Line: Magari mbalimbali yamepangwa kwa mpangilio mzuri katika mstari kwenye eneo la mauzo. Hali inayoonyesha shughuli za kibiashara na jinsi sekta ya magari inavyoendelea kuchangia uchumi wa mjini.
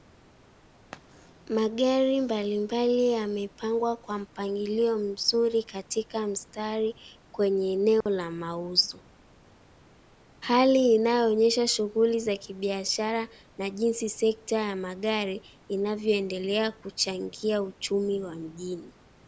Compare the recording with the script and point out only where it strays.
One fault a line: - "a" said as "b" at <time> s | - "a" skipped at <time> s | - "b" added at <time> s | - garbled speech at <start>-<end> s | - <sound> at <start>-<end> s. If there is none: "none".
- dropout at 8.0-8.1 s